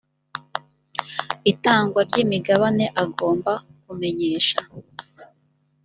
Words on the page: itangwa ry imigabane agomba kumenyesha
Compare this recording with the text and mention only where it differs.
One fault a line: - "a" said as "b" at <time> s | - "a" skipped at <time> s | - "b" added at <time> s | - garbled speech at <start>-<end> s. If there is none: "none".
none